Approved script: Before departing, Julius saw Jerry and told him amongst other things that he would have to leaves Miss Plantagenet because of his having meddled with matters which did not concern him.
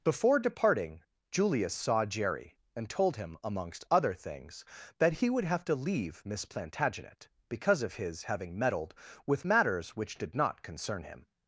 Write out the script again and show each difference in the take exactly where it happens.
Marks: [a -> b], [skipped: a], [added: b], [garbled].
Before departing, Julius saw Jerry and told him amongst other things that he would have to [leaves -> leave] Miss Plantagenet because of his having meddled with matters which did not concern him.